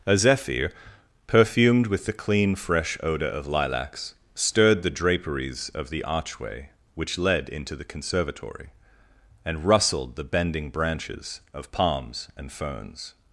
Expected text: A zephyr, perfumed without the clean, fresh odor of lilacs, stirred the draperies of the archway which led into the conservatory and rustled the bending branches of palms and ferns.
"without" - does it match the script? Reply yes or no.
no